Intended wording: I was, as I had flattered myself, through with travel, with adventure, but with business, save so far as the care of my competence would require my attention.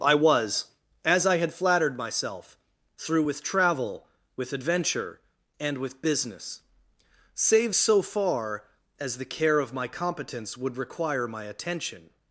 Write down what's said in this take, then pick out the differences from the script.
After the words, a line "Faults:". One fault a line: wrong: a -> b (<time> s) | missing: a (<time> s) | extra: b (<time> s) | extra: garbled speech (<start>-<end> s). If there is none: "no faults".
I was, as I had flattered myself, through with travel, with adventure, and with business, save so far as the care of my competence would require my attention.
Faults:
wrong: but -> and (5.6 s)